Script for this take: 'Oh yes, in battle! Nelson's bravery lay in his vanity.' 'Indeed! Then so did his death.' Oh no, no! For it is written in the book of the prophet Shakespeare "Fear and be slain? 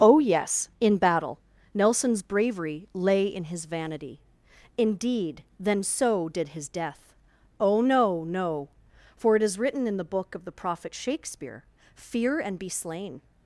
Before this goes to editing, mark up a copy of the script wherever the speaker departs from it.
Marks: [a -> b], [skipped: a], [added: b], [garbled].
'Oh yes, in battle! Nelson's bravery lay in his vanity.' 'Indeed! Then so did his death.' Oh no, no! For it is written in the book of the prophet Shakespeare "Fear and be slain?